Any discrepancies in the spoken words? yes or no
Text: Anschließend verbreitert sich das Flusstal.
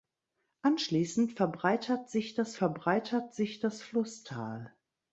yes